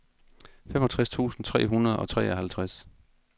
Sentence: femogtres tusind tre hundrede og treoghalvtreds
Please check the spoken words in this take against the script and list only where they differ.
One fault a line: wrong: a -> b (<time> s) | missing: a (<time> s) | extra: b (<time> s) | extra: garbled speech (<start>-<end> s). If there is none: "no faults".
no faults